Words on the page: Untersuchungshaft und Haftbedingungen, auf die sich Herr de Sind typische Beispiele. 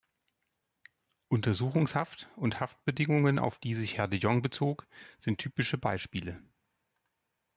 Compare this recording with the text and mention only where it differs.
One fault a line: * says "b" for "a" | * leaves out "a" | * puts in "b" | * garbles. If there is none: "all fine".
* puts in "Jong bezog"